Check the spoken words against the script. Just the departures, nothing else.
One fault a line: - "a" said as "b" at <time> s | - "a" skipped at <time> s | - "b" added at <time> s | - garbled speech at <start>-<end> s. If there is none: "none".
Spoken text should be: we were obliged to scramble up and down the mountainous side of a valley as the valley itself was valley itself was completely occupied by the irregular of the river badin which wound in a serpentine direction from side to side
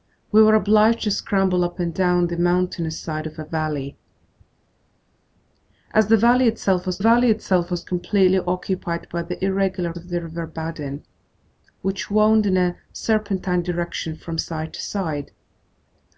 none